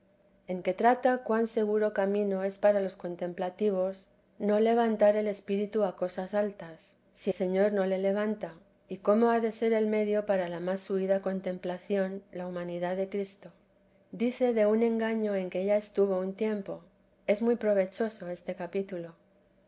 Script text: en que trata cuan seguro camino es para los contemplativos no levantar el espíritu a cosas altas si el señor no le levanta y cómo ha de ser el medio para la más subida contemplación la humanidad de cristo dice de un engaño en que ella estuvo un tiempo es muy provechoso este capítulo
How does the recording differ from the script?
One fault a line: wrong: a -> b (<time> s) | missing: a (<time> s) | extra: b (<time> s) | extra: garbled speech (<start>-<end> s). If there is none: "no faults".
missing: el (7.3 s)